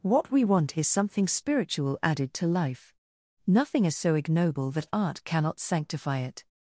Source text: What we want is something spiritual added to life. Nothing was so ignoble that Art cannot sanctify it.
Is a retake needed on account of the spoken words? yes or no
yes